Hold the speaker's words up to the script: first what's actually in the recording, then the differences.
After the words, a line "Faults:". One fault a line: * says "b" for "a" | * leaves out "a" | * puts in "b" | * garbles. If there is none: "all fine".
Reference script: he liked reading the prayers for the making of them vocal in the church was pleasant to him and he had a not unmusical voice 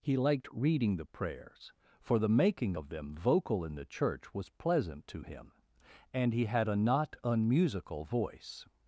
he liked reading the prayers for the making of them vocal in the church was pleasant to him and he had a not unmusical voice
Faults:
all fine